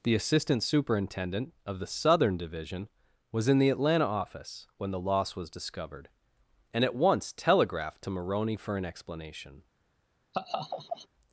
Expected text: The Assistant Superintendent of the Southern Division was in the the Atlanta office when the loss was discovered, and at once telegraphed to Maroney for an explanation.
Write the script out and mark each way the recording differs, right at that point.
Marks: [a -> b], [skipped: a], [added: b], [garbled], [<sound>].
The Assistant Superintendent of the Southern Division was in the [skipped: the] Atlanta office when the loss was discovered, and at once telegraphed to Maroney for an explanation. [laugh]